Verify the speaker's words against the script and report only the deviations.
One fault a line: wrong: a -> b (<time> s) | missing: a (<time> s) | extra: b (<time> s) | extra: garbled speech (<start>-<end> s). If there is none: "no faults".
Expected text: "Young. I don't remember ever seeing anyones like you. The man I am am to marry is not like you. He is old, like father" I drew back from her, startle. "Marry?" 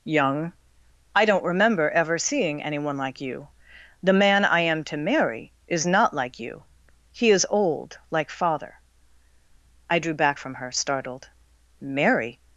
wrong: anyones -> anyone (2.6 s)
missing: am (4.8 s)
wrong: startle -> startled (10.7 s)